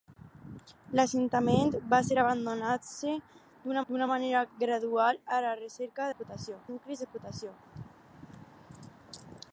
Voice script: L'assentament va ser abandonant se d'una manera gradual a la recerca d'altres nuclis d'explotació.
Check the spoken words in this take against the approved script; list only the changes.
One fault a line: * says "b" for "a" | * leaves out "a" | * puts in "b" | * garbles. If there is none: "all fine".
* puts in "d'una"
* says "d'explotació" for "d'altres"